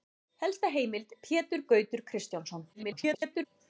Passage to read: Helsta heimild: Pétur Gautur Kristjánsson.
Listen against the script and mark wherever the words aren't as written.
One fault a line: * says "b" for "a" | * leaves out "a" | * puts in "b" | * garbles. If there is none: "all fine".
* garbles